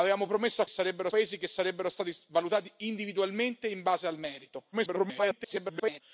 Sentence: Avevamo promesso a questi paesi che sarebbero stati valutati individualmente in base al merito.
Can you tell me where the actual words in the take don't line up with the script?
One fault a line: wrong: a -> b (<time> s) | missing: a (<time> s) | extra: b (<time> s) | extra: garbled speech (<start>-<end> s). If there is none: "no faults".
wrong: questi -> sarebbero (0.7 s)
extra: garbled speech (4.7-6.0 s)